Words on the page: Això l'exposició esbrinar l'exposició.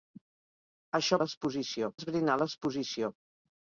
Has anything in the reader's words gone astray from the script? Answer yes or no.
no